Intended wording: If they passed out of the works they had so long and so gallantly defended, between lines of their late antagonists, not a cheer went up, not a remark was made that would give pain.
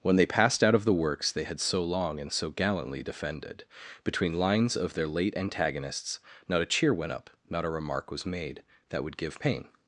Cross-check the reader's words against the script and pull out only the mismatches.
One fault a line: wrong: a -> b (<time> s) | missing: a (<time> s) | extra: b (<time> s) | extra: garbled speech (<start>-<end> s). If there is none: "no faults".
wrong: If -> When (0.0 s)